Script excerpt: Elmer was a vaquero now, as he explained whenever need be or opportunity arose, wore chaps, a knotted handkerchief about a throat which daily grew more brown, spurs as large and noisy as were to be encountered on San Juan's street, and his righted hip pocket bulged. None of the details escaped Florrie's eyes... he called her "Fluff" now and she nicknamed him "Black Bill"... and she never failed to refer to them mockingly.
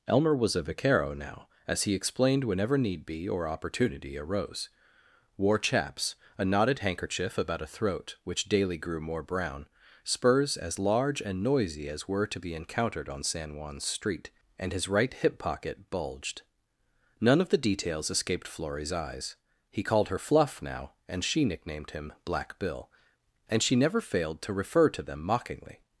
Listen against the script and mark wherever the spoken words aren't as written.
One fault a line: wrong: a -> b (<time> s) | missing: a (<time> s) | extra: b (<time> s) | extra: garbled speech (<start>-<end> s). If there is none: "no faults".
wrong: righted -> right (14.9 s)